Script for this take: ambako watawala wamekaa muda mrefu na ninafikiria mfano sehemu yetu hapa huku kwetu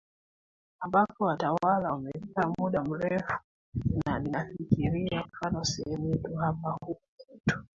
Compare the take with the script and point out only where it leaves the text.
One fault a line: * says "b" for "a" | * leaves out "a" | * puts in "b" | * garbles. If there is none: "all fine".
all fine